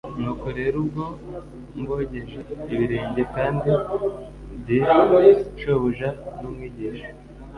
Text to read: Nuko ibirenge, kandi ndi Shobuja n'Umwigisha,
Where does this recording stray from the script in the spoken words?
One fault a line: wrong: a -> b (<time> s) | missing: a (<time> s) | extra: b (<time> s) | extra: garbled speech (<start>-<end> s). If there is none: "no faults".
extra: rero ubwo mbogeje (0.6 s)